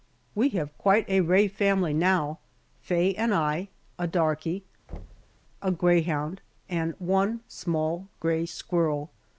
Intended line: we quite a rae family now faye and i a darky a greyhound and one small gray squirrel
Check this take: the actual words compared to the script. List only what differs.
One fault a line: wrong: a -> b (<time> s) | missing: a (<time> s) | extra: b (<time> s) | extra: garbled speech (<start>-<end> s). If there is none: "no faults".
extra: have (0.6 s)